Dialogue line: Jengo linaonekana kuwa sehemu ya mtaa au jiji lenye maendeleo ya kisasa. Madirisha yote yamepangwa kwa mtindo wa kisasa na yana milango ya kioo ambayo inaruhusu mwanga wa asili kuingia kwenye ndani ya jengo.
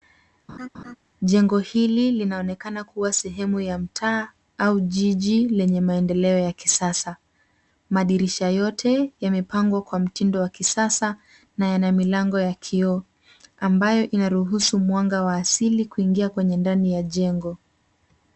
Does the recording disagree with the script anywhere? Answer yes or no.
yes